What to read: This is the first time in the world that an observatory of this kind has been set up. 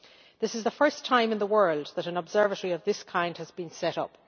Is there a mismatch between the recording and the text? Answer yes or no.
no